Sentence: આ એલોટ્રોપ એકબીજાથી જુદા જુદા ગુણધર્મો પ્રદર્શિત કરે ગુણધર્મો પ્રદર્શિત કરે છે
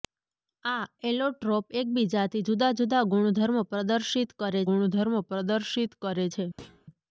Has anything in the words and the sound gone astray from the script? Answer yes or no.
yes